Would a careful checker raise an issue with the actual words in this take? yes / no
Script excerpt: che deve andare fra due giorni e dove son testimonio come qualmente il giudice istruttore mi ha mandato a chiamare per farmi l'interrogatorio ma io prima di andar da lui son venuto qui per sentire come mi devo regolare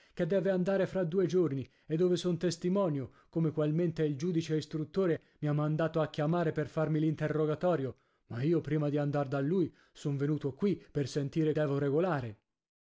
yes